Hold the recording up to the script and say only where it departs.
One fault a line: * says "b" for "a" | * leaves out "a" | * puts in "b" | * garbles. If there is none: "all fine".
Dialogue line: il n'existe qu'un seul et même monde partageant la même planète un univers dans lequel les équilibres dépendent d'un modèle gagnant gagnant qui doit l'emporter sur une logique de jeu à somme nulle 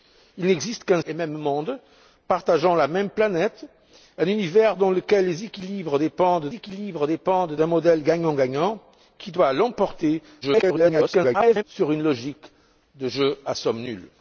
* leaves out "seul"
* puts in "équilibres dépendent"
* garbles